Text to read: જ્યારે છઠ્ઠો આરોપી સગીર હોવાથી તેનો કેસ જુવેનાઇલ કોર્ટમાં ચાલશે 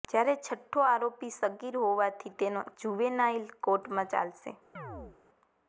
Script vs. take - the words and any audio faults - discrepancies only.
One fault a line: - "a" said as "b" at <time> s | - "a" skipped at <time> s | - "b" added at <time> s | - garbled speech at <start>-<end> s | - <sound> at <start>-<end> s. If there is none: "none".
- "કેસ" skipped at 2.6 s
- chirp at 4.8-5.2 s